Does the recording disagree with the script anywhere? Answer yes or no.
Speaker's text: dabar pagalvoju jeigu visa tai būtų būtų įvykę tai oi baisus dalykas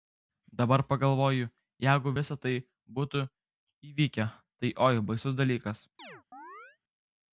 yes